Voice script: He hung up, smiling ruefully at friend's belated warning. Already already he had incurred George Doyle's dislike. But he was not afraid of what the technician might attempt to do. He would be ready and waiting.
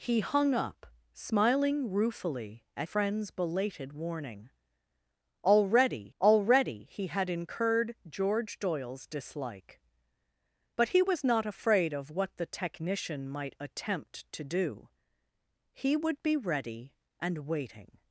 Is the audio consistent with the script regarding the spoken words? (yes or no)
yes